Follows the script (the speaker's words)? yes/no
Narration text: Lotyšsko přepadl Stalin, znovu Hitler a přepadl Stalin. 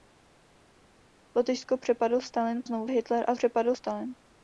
yes